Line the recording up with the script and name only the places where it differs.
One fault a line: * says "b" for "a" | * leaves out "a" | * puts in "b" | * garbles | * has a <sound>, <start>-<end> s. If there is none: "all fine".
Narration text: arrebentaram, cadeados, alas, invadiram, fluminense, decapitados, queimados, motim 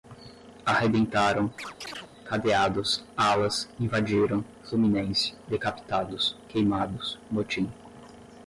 * has a chirp, 1.6-2.1 s